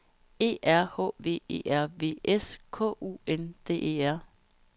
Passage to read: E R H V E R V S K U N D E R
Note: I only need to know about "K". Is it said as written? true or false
true